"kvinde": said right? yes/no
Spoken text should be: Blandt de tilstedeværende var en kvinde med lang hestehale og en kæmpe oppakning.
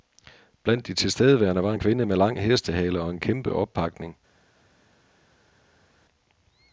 yes